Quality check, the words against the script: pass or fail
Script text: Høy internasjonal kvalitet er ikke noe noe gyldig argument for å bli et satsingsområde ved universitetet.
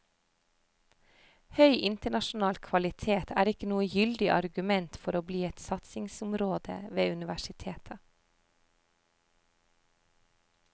fail